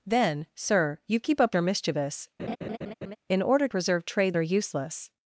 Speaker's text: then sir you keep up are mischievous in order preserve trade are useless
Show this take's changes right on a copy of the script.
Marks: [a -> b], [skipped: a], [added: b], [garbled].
then sir you keep up are mischievous in order preserve trade are useless